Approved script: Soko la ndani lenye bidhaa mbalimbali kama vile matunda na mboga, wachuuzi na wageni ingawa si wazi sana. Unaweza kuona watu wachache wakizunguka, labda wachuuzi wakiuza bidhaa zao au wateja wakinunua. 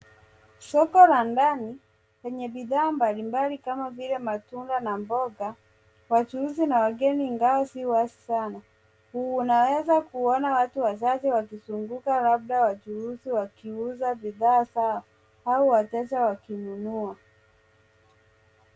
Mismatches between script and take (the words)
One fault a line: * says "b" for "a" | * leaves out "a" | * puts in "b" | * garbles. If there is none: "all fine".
all fine